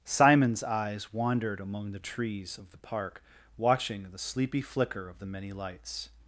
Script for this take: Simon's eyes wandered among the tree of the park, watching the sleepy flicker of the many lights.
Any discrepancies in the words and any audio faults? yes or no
yes